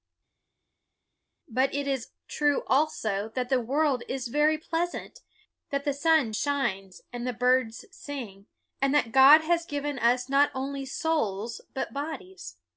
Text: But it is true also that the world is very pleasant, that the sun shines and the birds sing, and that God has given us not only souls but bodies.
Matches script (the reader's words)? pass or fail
pass